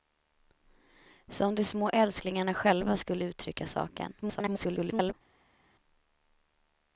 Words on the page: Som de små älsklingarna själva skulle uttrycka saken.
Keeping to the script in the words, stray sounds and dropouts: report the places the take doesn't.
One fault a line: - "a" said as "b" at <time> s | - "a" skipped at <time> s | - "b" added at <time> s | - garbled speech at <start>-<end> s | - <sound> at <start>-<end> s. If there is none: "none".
- garbled speech at 4.2-5.1 s